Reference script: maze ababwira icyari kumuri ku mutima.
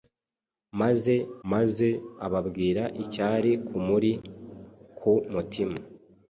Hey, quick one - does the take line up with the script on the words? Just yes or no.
no